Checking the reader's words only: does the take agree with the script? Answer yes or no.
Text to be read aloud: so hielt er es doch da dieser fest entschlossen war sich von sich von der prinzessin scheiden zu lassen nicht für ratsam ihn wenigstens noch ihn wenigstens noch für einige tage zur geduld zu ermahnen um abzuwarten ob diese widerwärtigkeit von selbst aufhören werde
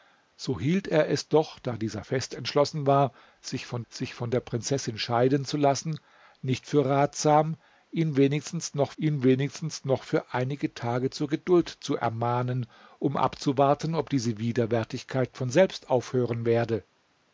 yes